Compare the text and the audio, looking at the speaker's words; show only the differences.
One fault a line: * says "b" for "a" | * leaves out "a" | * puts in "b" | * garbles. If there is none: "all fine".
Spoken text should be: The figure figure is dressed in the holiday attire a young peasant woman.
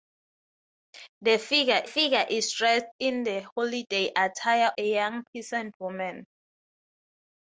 all fine